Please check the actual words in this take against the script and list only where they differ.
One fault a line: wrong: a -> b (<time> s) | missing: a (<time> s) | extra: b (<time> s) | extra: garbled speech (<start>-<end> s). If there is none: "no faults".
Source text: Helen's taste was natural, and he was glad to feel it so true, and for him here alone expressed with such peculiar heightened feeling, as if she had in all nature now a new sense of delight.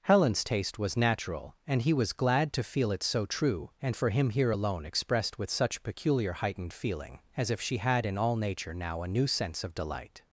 no faults